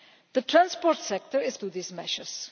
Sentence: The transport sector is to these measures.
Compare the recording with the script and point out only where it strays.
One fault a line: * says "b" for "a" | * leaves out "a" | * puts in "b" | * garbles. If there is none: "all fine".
all fine